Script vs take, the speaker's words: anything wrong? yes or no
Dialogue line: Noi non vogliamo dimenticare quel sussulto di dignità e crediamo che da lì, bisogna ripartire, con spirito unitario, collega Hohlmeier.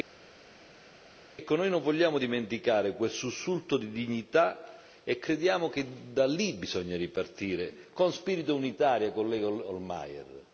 no